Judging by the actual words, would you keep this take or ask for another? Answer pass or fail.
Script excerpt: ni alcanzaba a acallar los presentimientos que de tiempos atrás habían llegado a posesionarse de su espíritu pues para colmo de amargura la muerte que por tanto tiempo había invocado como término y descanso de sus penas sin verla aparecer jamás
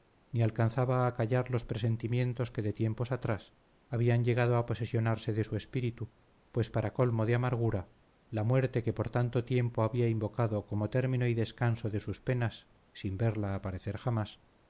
pass